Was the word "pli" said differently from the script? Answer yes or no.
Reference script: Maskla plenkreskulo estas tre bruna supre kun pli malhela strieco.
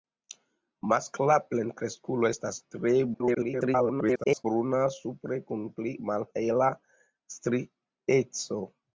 no